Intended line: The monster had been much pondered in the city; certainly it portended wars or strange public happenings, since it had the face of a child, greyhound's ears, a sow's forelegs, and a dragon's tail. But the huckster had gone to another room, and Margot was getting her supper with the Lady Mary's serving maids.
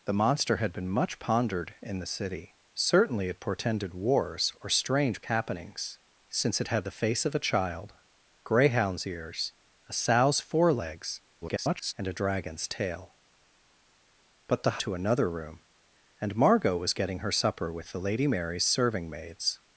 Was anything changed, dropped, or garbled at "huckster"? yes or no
yes